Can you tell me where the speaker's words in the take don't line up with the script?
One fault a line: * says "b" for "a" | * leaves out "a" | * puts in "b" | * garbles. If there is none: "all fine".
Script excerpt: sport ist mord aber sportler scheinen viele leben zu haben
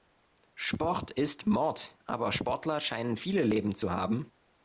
all fine